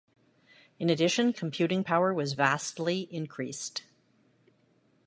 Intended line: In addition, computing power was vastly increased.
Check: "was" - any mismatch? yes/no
no